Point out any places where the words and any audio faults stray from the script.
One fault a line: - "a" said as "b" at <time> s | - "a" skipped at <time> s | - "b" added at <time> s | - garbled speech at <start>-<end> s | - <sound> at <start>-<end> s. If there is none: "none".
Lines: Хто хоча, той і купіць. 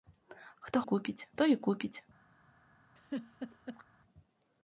- "хоча" said as "купіць" at 0.8 s
- laugh at 3.0-3.8 s